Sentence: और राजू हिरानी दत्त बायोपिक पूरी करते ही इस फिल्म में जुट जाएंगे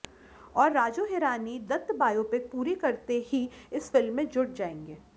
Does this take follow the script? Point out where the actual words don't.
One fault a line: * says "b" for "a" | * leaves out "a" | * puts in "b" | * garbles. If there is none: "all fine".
all fine